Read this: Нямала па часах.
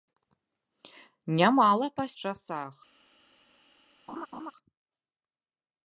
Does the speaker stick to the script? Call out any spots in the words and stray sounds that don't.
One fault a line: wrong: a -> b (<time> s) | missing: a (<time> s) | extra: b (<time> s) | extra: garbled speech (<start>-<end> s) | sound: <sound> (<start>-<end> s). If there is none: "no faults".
sound: laugh (4.1-4.5 s)